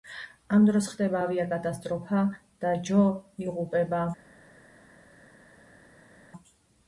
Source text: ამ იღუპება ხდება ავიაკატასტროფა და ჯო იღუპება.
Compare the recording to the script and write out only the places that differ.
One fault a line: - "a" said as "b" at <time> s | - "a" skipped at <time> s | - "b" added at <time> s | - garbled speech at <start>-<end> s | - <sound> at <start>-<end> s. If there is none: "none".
- "იღუპება" said as "დროს" at 0.7 s